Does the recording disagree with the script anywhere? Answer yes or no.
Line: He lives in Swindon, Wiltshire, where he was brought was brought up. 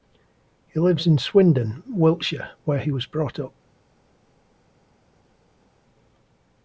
yes